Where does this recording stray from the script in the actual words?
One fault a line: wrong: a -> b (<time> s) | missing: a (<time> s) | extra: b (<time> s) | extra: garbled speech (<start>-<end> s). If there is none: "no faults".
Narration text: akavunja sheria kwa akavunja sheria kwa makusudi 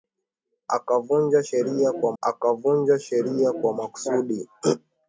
no faults